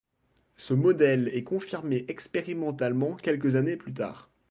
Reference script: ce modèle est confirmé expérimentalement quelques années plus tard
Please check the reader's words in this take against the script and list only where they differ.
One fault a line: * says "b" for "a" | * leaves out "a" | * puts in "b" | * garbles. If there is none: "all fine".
all fine